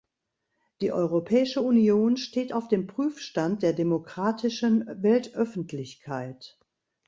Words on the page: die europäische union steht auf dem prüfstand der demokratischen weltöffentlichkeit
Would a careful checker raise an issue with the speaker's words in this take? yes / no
no